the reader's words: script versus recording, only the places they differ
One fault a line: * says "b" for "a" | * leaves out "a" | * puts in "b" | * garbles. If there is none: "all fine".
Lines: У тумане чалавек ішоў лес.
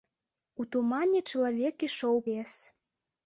all fine